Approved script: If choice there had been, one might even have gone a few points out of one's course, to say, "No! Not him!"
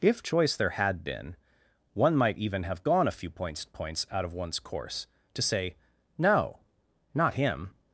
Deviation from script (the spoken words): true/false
true